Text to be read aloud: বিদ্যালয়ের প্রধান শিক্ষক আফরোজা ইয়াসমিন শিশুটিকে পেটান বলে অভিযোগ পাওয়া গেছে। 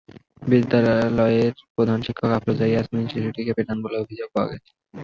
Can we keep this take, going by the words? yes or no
yes